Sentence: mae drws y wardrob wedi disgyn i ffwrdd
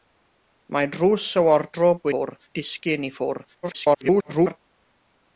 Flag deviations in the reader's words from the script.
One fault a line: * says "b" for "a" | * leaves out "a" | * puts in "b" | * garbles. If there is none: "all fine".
* says "ffwrdd" for "wedi"
* garbles